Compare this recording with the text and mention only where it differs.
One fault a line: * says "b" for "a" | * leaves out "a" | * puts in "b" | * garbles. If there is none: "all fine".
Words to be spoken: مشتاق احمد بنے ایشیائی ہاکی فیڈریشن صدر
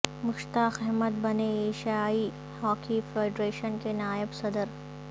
* puts in "کے نائب"